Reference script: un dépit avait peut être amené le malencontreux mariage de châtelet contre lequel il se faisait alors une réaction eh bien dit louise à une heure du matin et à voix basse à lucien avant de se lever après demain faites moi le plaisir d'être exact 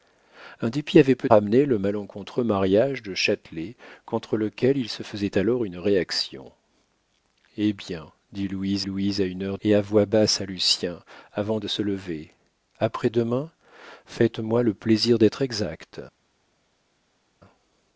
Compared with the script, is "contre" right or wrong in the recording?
right